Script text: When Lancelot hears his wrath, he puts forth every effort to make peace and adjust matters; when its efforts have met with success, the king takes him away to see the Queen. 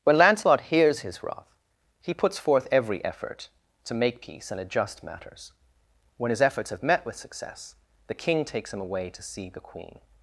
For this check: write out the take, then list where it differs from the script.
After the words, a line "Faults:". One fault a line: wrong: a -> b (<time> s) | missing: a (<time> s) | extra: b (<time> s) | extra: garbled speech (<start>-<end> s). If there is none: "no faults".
When Lancelot hears his wrath, he puts forth every effort to make peace and adjust matters; when his efforts have met with success, the king takes him away to see the Queen.
Faults:
wrong: its -> his (6.3 s)